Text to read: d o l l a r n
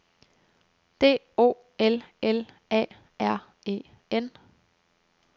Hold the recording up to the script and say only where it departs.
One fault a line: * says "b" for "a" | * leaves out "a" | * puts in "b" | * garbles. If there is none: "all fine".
* puts in "e"